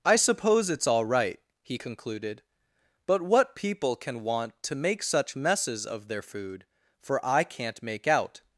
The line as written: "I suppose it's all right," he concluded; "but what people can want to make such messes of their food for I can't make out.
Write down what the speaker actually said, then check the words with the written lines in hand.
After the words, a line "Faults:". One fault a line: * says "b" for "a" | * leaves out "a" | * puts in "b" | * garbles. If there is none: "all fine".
"I suppose it's all right," he concluded; "but what people can want to make such messes of their food for I can't make out.
Faults:
all fine